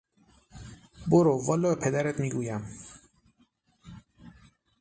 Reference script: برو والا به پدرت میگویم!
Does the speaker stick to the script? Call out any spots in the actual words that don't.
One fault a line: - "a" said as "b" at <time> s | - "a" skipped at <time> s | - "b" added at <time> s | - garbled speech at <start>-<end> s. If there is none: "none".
none